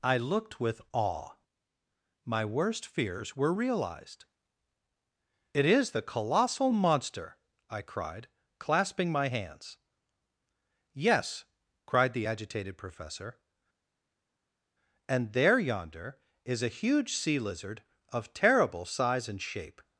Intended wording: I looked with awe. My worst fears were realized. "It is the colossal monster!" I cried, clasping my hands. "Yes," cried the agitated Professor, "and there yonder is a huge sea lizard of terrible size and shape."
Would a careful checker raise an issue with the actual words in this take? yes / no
no